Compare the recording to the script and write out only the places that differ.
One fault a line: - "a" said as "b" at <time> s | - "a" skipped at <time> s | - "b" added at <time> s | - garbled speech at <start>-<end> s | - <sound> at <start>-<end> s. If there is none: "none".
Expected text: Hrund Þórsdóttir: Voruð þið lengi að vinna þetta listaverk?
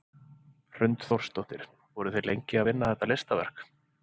none